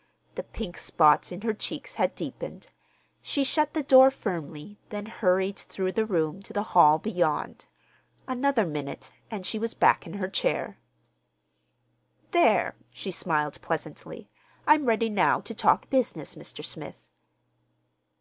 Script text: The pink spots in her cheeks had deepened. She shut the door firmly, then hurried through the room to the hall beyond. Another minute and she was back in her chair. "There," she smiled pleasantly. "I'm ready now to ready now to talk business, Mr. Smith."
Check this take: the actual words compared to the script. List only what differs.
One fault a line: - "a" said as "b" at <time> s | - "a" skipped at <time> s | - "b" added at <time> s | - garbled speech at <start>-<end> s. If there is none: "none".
- "ready now to" skipped at 15.5 s